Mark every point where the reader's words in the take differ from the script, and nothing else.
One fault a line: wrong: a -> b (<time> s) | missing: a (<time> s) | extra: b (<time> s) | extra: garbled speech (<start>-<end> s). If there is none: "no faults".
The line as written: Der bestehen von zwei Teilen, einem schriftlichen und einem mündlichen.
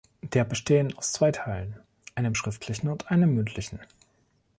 wrong: von -> aus (1.0 s)